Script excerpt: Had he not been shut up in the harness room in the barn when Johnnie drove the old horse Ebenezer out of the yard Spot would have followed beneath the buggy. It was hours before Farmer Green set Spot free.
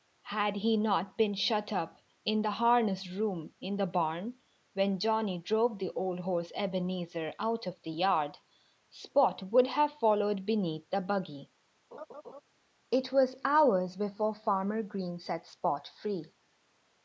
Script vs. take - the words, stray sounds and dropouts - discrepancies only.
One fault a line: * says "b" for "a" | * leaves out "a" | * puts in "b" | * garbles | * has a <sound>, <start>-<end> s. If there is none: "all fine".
* has a laugh, 11.9-12.4 s